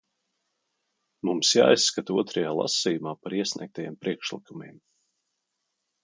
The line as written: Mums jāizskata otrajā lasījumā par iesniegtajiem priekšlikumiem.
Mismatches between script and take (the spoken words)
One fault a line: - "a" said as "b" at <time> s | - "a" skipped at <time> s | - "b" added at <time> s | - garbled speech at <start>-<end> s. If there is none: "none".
none